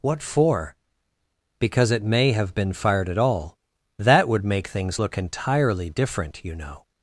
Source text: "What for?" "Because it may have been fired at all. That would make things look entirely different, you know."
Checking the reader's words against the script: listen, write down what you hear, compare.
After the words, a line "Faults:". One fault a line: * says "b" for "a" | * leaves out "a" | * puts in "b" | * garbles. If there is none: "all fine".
"What for?" "Because it may have been fired at all. That would make things look entirely different, you know."
Faults:
all fine